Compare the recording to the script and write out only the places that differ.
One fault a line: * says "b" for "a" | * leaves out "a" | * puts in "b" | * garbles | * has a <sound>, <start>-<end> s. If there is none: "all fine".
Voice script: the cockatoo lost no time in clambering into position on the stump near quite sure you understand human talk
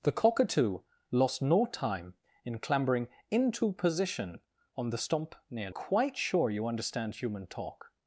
all fine